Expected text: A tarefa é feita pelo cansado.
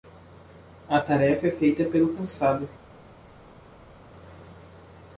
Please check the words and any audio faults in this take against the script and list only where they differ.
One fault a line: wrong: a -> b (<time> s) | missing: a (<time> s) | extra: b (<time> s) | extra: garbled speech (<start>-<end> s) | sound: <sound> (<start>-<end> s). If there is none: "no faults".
no faults